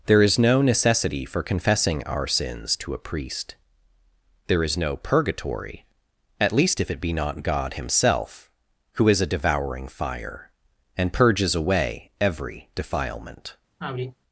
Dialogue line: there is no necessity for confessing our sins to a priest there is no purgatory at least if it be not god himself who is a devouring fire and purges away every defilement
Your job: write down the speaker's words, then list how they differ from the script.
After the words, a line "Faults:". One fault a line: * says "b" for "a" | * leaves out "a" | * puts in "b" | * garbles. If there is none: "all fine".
there is no necessity for confessing our sins to a priest there is no purgatory at least if it be not god himself who is a devouring fire and purges away every defilement
Faults:
all fine